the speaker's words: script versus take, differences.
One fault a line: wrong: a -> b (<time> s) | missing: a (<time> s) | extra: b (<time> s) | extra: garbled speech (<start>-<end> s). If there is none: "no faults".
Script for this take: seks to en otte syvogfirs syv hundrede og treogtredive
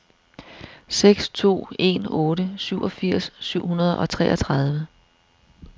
no faults